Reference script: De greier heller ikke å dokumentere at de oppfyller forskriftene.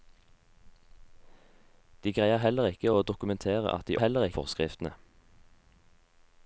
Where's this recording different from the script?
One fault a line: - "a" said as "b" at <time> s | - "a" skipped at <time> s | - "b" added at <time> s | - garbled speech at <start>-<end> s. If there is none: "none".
- "oppfyller" said as "heller" at 4.0 s